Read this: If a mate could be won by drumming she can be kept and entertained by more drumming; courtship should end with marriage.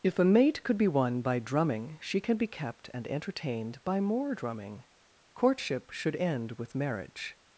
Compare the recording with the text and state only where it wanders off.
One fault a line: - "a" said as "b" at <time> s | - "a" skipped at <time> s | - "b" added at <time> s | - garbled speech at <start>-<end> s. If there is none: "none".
none